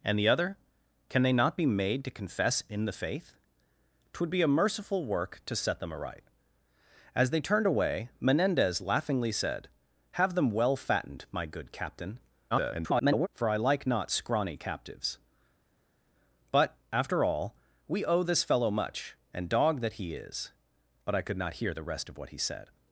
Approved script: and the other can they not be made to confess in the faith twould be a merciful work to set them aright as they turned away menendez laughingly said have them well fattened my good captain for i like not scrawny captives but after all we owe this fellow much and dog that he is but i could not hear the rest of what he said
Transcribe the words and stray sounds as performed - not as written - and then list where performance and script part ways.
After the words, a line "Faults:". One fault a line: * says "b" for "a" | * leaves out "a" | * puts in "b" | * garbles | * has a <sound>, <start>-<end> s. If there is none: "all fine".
and the other can they not be made to confess in the faith twould be a merciful work to set them aright as they turned away menendez laughingly said have them well fattened my good captain [garbled] for i like not scrawny captives but after all we owe this fellow much and dog that he is but i could not hear the rest of what he said
Faults:
* garbles